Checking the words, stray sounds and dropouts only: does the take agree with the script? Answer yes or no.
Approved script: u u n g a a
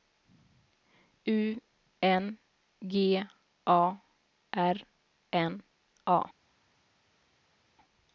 no